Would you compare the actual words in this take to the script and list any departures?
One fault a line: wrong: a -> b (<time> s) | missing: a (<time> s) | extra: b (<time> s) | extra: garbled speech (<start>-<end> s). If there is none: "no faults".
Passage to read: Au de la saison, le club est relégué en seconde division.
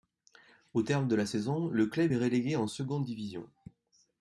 extra: terme (0.8 s)